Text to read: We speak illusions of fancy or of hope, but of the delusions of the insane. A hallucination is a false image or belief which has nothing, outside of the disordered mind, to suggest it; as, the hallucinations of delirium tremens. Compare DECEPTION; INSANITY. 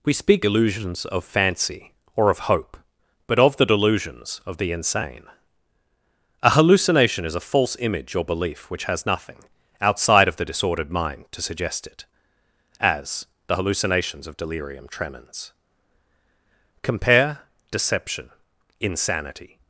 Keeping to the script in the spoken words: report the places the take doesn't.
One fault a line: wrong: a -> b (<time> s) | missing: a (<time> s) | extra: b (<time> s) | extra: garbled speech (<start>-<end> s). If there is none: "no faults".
no faults